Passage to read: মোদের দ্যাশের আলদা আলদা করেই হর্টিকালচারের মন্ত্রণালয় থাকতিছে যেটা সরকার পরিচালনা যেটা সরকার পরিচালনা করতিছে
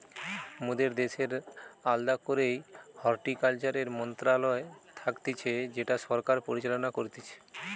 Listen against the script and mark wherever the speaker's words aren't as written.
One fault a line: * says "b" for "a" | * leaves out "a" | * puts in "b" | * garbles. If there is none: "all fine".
* leaves out "আলদা"
* leaves out "যেটা সরকার পরিচালনা"